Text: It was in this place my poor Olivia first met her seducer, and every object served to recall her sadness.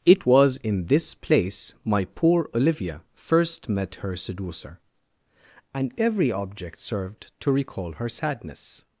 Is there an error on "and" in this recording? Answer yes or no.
no